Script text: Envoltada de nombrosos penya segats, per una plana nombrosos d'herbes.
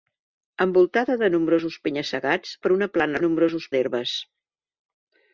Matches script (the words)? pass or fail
pass